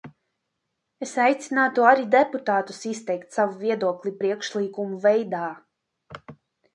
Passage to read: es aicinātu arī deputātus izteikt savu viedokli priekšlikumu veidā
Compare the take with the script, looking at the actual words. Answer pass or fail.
pass